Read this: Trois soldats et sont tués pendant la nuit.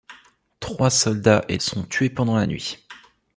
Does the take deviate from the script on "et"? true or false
false